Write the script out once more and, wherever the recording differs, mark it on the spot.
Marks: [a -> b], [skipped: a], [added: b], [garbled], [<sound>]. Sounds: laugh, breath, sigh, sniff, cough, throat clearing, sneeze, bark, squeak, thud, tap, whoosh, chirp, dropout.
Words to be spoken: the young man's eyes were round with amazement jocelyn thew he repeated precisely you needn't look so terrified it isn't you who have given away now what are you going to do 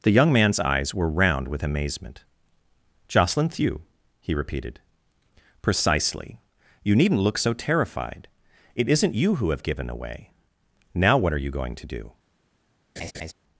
the young man's eyes were round with amazement jocelyn thew he repeated precisely you needn't look so terrified it isn't you who have given away now what are you going to do [laugh]